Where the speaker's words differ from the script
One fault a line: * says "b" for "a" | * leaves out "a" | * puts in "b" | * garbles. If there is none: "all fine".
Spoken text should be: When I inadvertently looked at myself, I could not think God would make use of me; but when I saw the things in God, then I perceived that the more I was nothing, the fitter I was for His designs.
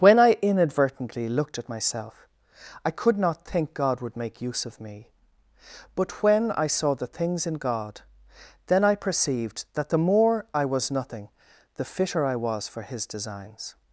all fine